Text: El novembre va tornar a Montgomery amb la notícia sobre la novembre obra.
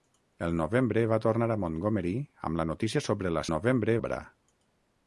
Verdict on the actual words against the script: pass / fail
pass